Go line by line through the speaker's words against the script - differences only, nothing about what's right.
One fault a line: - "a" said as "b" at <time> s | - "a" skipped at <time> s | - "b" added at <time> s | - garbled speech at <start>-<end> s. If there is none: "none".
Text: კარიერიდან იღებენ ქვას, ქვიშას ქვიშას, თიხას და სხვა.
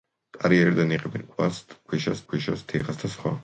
none